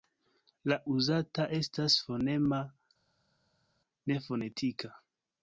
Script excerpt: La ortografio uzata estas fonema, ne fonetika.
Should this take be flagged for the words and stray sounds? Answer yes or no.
yes